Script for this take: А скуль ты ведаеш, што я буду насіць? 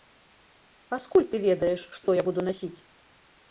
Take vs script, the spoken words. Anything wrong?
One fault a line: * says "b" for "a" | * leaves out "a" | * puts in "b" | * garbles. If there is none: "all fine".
all fine